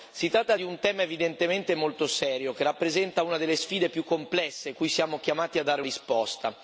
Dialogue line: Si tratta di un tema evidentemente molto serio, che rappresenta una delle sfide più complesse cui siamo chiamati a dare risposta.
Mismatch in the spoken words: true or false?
false